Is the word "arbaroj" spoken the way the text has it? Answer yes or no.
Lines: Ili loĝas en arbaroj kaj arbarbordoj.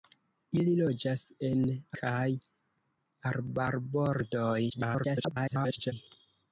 no